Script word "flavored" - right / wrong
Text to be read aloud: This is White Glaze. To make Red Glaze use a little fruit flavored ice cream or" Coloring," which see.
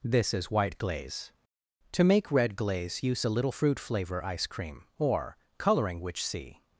wrong